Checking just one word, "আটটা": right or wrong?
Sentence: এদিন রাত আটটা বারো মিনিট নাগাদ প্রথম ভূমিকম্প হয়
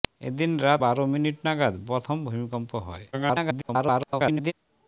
wrong